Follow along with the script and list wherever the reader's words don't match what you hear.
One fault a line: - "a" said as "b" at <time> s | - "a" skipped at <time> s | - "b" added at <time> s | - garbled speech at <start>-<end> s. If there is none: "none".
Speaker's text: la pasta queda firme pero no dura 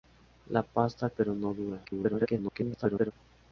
- "queda firme" skipped at 1.1 s
- garbled speech at 1.8-3.1 s